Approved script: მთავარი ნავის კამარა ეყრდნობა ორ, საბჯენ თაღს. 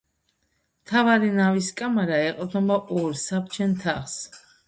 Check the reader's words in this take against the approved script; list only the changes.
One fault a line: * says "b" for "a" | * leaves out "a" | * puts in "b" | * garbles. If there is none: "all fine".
all fine